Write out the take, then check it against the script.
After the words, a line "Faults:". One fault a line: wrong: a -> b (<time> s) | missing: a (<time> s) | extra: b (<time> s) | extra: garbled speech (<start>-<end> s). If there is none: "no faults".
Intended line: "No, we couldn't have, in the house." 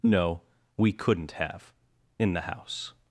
"No, we couldn't have, in the house."
Faults:
no faults